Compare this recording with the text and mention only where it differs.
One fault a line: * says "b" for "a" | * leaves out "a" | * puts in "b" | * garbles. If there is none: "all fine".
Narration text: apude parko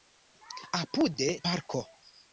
all fine